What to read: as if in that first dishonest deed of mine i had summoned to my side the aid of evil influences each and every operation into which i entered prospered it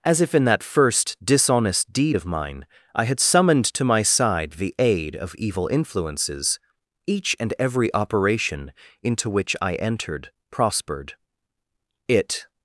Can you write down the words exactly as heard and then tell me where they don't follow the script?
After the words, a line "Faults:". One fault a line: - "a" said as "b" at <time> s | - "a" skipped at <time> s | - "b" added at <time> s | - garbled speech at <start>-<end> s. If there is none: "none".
as if in that first dishonest deed of mine i had summoned to my side the aid of evil influences each and every operation into which i entered prospered it
Faults:
none